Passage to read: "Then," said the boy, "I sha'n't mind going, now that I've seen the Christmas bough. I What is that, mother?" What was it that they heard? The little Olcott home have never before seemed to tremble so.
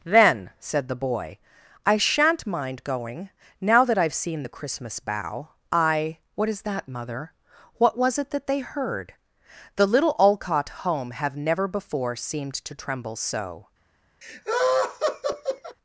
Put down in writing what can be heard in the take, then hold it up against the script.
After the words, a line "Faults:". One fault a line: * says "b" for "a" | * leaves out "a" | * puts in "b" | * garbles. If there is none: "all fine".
"Then," said the boy, "I sha'n't mind going, now that I've seen the Christmas bough. I What is that, mother?" What was it that they heard? The little Olcott home have never before seemed to tremble so.
Faults:
all fine